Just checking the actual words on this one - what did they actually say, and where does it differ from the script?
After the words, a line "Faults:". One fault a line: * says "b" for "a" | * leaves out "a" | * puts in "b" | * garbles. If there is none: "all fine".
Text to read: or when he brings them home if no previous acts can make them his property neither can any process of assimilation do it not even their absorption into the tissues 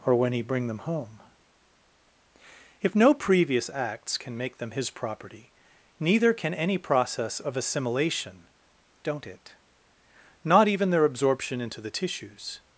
or when he bring them home if no previous acts can make them his property neither can any process of assimilation don't it not even their absorption into the tissues
Faults:
* says "bring" for "brings"
* says "don't" for "do"